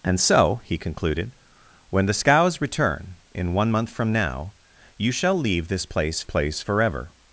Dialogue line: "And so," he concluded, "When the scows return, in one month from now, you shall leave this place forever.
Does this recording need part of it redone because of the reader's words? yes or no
yes